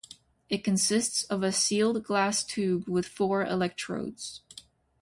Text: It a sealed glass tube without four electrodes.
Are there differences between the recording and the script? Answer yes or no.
yes